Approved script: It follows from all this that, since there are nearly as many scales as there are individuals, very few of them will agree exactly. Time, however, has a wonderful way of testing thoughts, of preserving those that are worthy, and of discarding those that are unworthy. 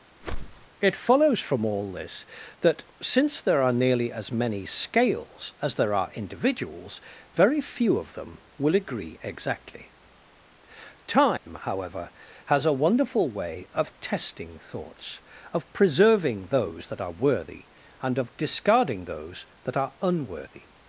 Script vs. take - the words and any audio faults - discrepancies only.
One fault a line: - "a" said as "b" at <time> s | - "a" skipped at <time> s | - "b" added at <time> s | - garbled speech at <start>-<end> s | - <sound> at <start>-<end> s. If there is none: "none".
- whoosh at 0.2-0.7 s
- dropout at 11.4-11.5 s